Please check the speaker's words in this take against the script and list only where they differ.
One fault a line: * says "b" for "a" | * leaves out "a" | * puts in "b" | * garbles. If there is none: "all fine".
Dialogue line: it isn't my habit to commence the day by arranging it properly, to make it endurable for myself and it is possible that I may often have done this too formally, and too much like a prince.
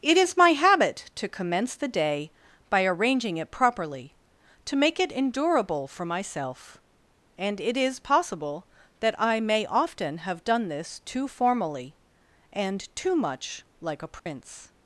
* says "is" for "isn't"